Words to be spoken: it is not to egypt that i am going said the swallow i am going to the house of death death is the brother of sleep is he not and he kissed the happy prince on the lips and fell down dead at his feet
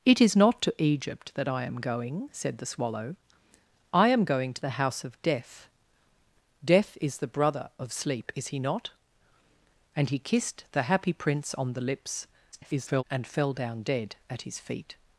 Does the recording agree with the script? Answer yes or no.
no